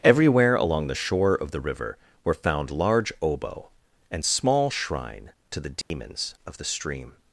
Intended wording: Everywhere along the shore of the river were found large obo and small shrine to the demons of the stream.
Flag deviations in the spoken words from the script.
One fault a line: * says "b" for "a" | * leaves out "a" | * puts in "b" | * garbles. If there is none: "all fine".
all fine